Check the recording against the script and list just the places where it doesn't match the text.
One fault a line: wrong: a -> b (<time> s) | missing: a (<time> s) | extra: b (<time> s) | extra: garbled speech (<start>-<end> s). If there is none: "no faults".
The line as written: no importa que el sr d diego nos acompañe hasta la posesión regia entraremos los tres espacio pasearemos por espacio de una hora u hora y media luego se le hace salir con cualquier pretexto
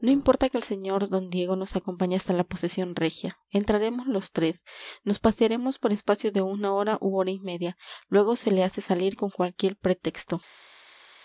wrong: espacio -> nos (5.0 s)